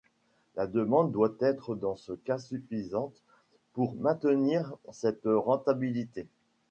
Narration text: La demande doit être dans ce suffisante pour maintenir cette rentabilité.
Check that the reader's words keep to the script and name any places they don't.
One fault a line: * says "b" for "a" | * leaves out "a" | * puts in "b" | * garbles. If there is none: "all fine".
* puts in "cas"